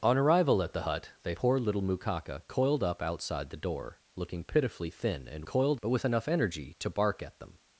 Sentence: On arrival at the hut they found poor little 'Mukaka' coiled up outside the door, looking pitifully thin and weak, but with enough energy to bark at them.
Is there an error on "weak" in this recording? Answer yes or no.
yes